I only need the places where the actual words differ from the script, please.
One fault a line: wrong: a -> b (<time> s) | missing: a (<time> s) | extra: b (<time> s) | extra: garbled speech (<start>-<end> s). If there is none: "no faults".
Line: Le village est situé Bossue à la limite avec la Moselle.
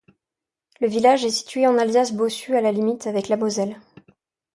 extra: en Alsace (1.7 s)